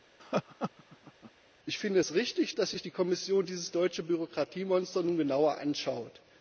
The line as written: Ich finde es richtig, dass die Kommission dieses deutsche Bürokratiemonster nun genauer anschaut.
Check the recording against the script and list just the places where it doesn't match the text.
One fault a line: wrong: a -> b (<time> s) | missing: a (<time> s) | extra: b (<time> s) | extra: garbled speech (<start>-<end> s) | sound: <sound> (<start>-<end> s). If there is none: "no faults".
sound: laugh (0.2-1.3 s)
extra: sich (2.7 s)